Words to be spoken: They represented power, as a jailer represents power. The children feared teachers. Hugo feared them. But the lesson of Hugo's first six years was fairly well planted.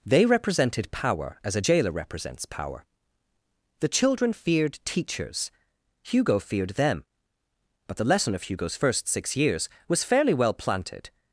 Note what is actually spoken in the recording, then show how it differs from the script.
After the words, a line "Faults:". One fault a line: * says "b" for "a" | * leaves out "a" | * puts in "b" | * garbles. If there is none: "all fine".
They represented power, as a jailer represents power. The children feared teachers. Hugo feared them. But the lesson of Hugo's first six years was fairly well planted.
Faults:
all fine